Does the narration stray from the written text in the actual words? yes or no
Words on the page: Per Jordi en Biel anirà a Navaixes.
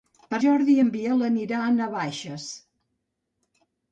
no